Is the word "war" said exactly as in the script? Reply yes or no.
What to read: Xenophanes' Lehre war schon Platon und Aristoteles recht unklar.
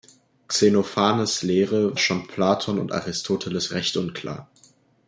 no